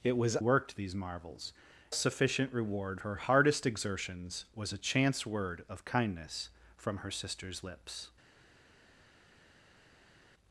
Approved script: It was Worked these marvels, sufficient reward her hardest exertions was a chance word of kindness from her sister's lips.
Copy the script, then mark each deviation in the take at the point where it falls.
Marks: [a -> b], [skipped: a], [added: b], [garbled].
It was Worked these marvels, sufficient reward her hardest exertions was a chance word of kindness from her sister's lips.